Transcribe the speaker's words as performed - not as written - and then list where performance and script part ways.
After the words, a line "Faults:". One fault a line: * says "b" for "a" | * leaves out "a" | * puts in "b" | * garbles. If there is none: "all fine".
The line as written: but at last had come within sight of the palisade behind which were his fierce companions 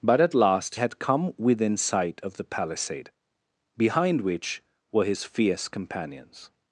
but at last had come within sight of the palisade behind which were his fierce companions
Faults:
all fine